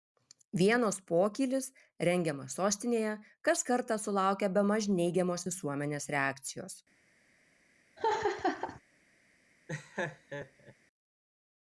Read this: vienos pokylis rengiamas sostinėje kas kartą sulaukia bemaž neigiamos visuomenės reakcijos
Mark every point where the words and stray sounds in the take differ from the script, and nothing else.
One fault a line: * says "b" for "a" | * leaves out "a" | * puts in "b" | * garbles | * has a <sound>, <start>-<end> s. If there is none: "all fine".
* has a laugh, 8.0-8.8 s
* has a laugh, 9.7-10.7 s